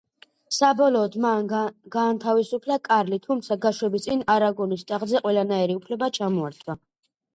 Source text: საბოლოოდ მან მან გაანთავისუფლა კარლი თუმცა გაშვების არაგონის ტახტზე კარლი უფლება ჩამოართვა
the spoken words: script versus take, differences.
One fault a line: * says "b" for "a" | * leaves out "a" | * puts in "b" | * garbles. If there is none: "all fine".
* leaves out "მან"
* puts in "წინ"
* says "ყველანაირი" for "კარლი"